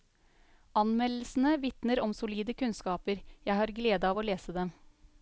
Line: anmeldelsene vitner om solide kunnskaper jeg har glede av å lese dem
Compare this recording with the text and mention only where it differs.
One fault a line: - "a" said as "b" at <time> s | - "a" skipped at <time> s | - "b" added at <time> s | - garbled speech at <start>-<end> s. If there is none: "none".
none